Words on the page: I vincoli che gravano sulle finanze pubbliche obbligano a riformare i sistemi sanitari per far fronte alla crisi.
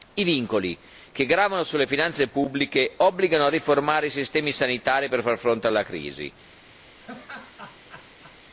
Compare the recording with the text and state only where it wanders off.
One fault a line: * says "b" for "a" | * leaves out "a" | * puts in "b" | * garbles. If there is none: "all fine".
all fine